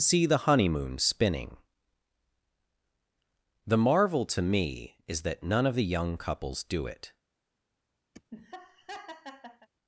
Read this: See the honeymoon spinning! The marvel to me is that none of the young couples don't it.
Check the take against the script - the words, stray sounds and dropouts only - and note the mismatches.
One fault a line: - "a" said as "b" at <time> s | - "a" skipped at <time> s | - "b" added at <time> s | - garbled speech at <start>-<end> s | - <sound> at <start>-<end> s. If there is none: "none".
- "don't" said as "do" at 6.6 s
- laugh at 8.1-9.7 s